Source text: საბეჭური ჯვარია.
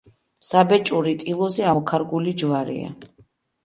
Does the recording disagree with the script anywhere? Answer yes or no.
yes